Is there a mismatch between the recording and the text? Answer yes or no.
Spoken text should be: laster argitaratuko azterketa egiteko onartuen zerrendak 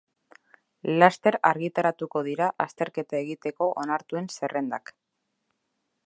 yes